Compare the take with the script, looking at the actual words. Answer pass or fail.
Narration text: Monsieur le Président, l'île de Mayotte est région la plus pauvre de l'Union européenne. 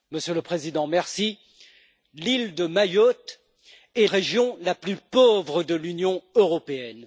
pass